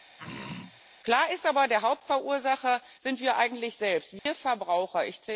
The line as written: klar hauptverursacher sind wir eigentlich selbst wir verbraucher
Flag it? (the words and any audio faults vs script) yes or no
yes